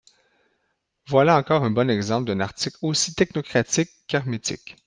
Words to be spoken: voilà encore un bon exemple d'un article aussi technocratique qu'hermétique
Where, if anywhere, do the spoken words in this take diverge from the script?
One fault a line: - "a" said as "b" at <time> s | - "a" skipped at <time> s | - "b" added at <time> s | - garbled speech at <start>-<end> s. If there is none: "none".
none